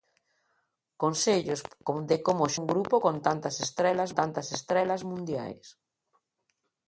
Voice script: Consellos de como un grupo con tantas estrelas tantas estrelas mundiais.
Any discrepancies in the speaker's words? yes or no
no